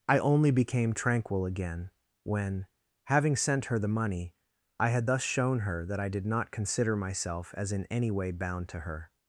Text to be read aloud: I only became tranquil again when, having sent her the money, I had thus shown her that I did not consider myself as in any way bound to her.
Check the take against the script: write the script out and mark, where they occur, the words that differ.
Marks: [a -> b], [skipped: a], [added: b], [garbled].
I only became tranquil again when, having sent her the money, I had thus shown her that I did not consider myself as in any way bound to her.